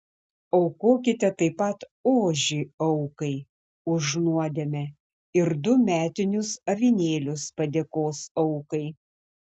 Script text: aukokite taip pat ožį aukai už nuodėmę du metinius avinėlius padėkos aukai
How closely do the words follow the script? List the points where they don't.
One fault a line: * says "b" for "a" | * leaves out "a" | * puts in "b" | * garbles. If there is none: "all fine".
* puts in "ir"